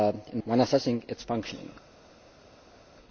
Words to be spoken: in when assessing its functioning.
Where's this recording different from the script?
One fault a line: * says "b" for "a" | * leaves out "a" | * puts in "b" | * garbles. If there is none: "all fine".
all fine